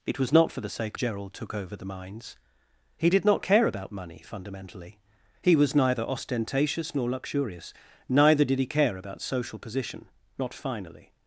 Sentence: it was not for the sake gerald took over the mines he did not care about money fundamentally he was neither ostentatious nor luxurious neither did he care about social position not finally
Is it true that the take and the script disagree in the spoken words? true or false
false